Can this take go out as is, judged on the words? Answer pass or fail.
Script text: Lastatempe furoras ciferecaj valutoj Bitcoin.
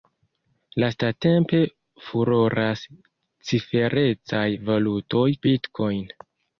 pass